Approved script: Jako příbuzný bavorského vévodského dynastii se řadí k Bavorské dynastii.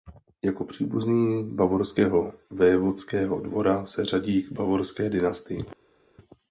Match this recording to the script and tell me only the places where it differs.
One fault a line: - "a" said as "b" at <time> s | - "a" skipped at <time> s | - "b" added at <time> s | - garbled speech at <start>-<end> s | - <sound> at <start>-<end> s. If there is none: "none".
- "dynastii" said as "dvora" at 3.4 s